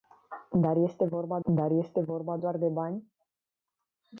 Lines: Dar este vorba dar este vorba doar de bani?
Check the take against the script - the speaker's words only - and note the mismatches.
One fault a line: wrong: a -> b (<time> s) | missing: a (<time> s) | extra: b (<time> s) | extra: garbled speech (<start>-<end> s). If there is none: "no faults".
no faults